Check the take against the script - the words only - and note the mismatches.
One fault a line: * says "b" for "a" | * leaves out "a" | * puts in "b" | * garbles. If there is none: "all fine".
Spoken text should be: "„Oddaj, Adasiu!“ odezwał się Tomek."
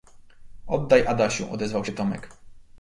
all fine